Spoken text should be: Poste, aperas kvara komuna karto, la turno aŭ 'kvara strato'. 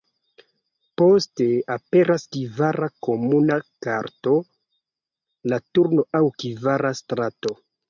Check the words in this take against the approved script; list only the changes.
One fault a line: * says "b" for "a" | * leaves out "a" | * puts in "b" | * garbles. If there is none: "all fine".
all fine